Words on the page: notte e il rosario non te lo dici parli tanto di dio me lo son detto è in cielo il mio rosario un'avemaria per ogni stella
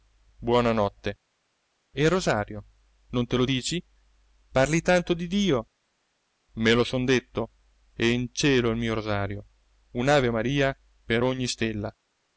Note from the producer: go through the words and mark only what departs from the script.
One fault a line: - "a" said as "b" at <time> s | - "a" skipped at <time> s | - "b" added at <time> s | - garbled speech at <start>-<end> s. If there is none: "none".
none